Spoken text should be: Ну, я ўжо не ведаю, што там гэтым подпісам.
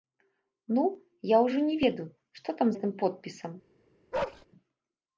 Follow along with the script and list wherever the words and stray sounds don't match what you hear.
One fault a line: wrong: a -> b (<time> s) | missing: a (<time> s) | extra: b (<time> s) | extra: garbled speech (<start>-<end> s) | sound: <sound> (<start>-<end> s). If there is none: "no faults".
sound: bark (4.1-4.5 s)